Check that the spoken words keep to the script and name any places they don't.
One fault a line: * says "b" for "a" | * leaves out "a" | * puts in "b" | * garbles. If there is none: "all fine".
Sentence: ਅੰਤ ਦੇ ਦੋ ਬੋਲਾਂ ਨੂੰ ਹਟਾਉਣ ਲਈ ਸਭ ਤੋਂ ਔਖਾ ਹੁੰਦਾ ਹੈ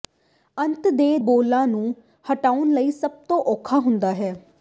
* leaves out "ਦੋ"